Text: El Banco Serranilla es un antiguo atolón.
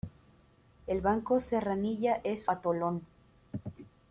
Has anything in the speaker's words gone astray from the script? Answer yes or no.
yes